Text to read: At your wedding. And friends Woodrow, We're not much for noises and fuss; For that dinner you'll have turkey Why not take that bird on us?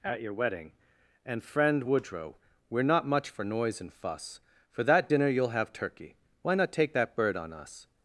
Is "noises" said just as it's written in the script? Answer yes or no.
no